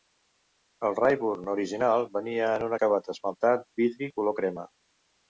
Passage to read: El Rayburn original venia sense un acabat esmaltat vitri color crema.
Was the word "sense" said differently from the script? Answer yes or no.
yes